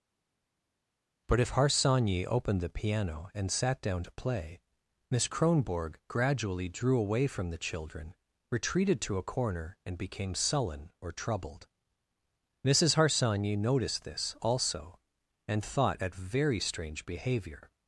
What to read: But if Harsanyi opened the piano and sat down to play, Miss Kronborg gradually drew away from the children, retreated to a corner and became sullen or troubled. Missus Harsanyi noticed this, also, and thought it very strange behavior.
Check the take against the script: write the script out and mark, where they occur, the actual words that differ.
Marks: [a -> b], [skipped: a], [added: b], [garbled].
But if Harsanyi opened the piano and sat down to play, Miss Kronborg gradually drew away from the children, retreated to a corner and became sullen or troubled. Missus Harsanyi noticed this, also, and thought [it -> at] very strange behavior.